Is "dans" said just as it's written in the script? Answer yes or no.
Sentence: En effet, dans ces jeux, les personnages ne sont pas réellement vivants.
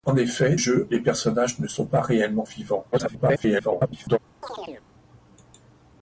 no